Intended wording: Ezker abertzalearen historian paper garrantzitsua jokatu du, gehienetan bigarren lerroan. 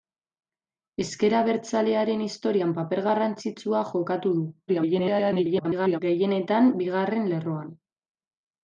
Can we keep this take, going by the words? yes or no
no